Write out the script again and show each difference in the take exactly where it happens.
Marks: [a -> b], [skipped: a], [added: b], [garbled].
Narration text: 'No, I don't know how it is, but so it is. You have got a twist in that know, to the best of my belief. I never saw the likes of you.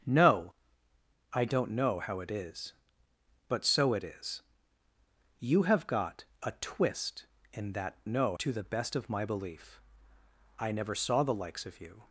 'No, I don't know how it is, but so it is. You have got a twist in that know, to the best of my belief. I never saw the likes of you.